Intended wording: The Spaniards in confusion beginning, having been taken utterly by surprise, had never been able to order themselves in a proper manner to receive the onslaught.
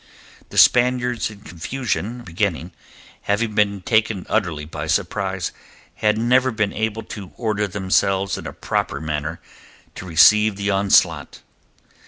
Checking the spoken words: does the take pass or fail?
pass